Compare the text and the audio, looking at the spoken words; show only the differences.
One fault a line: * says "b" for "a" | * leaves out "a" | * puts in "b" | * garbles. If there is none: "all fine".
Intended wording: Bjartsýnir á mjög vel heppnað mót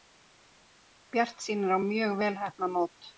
all fine